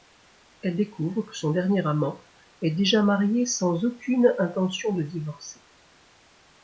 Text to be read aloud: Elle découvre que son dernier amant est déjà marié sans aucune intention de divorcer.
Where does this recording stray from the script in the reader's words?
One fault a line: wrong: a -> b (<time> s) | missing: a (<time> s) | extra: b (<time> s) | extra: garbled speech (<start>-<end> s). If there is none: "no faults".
no faults